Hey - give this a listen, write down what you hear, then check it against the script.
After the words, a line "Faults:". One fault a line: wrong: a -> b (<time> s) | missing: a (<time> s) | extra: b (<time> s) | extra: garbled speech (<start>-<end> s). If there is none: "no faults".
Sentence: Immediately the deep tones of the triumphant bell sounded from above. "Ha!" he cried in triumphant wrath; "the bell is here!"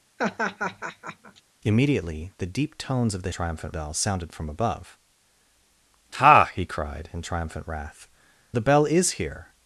Immediately the deep tones of the triumphant bell sounded from above. "Ha!" he cried in triumphant wrath; "the bell is here!"
Faults:
no faults